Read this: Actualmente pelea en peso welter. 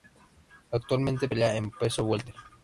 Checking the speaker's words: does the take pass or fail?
pass